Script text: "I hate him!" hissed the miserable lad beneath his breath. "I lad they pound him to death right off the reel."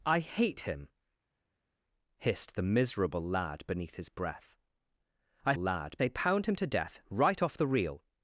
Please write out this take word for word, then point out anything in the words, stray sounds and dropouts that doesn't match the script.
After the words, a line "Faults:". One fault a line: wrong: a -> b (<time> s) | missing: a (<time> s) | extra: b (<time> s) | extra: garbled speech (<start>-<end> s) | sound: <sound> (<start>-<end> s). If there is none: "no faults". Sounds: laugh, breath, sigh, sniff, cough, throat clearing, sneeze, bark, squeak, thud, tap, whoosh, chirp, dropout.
"I hate him!" hissed the miserable lad beneath his breath. "I lad they pound him to death right off the reel."
Faults:
no faults